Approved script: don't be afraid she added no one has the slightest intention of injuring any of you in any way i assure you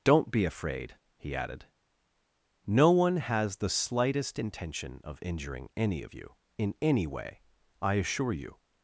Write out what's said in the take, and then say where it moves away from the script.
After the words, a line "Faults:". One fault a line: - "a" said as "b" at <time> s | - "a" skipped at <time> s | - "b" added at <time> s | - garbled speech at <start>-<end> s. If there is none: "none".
don't be afraid he added no one has the slightest intention of injuring any of you in any way i assure you
Faults:
- "she" said as "he" at 1.1 s